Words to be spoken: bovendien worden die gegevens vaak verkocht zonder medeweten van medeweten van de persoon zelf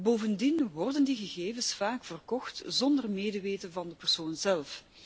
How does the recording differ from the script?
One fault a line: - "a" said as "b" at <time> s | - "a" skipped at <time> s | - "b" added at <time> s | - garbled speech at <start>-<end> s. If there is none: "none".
- "medeweten van" skipped at 3.9 s